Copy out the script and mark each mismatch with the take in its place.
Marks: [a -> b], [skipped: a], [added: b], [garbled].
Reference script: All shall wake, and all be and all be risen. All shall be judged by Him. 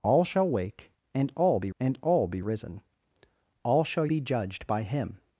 All shall wake, and all be and all be risen. All shall be judged by Him.